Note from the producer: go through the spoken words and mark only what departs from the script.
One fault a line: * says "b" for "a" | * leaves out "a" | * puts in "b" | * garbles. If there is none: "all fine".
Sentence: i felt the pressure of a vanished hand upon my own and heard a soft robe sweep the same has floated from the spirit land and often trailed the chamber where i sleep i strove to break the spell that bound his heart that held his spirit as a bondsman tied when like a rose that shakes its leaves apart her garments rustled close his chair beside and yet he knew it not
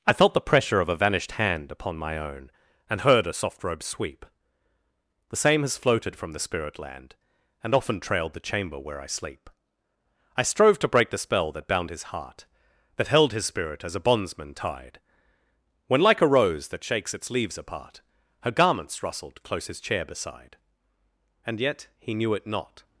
all fine